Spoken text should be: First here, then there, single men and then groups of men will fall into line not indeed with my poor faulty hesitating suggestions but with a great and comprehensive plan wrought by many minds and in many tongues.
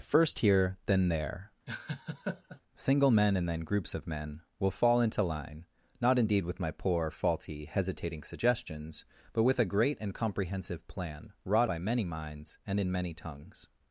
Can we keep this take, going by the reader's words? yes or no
yes